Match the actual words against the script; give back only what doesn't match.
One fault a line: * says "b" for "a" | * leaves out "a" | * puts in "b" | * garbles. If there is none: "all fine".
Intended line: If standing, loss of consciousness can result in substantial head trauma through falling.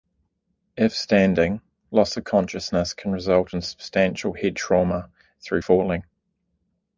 all fine